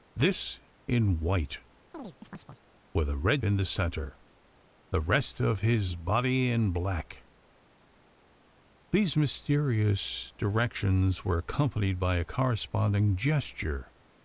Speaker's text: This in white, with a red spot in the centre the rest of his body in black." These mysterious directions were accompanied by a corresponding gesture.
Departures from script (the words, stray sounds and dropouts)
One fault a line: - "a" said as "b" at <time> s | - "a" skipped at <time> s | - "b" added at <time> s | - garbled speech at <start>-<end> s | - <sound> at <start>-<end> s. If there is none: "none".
- chirp at 1.9-2.6 s
- "spot" skipped at 3.4 s